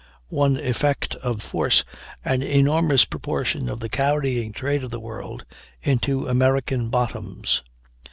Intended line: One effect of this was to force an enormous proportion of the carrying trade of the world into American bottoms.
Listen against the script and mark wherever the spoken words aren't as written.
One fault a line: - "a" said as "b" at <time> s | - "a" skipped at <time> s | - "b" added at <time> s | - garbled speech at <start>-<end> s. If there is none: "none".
- "this was to" skipped at 1.4 s